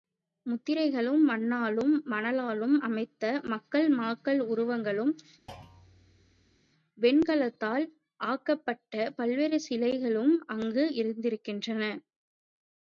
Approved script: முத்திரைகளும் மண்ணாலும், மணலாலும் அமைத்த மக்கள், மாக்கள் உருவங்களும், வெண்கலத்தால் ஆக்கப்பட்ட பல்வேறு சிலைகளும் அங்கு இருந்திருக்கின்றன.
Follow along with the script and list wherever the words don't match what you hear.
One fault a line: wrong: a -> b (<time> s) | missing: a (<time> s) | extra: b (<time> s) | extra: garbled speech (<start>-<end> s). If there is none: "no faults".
no faults